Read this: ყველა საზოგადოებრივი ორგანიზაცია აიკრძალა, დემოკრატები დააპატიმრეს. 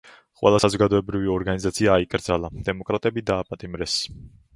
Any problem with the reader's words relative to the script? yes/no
no